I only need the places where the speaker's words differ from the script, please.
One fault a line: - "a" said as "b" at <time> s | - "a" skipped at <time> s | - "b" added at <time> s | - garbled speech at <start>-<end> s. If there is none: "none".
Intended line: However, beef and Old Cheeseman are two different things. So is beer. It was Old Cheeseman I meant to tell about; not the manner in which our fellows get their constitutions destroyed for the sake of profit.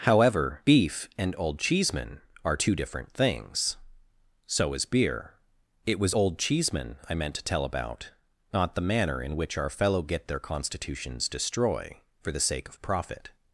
- "fellows" said as "fellow" at 9.7 s
- "destroyed" said as "destroy" at 11.3 s